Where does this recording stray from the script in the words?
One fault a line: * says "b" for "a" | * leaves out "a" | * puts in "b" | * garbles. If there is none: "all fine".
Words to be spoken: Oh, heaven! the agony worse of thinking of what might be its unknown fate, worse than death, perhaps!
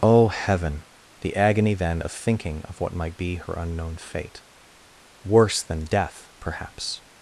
* says "then" for "worse"
* says "her" for "its"